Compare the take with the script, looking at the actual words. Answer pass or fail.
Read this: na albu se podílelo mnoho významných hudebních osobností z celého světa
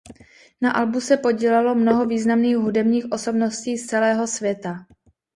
pass